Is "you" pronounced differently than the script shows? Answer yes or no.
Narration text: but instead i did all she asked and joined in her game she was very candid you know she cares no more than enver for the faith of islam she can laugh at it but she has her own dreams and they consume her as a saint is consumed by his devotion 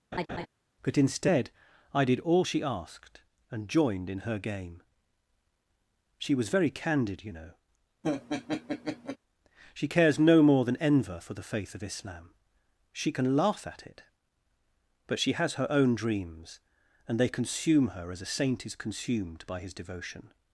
no